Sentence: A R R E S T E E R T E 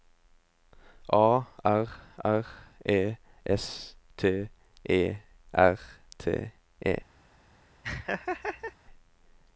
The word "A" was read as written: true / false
true